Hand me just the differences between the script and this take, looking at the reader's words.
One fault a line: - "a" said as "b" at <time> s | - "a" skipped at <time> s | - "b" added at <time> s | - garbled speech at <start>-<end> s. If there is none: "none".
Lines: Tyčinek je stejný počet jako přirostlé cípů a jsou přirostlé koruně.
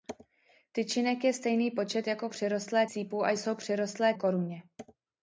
none